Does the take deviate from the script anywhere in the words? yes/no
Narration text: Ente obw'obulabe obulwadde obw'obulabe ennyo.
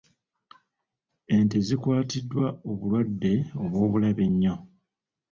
yes